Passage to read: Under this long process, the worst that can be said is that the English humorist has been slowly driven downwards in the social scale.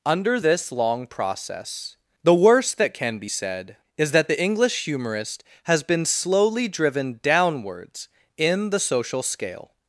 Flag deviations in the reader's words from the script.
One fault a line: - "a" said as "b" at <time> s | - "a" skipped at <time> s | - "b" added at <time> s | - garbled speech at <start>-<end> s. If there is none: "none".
none